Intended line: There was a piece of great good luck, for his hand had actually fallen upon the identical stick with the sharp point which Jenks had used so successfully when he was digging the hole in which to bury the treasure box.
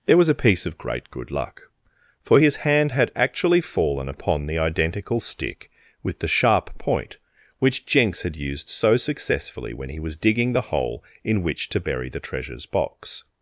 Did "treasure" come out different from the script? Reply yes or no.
yes